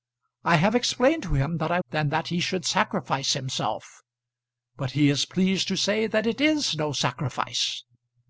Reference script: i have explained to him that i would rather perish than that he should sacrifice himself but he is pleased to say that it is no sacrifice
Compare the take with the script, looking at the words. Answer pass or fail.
fail